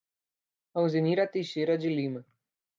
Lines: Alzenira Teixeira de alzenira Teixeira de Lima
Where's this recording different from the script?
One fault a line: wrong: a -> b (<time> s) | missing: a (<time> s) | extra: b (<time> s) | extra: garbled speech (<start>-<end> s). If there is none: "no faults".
missing: alzenira Teixeira de (1.9 s)